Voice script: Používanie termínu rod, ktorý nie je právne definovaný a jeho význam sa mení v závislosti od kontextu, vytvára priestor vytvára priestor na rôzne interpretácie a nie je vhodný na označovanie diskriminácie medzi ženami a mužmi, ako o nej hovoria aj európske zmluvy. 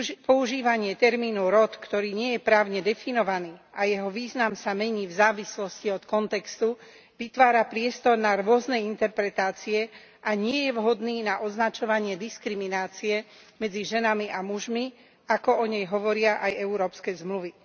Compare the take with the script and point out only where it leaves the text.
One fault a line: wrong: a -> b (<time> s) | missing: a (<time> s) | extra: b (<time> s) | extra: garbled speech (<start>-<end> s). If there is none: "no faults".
missing: vytvára priestor (8.2 s)